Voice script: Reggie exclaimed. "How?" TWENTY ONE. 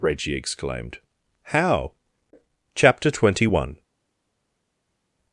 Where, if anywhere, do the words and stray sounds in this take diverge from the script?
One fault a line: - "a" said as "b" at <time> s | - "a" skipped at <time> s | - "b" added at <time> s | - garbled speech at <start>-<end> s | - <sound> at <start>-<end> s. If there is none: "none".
- "CHAPTER" added at 2.7 s